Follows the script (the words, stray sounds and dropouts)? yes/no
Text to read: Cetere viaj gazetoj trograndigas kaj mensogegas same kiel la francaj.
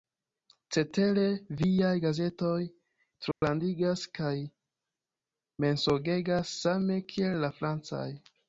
no